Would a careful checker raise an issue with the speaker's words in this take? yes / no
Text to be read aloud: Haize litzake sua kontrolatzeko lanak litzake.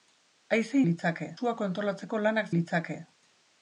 no